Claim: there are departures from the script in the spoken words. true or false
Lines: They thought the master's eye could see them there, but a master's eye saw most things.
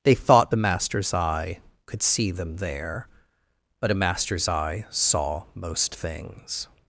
false